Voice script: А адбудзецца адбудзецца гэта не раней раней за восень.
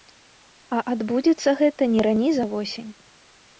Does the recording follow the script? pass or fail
fail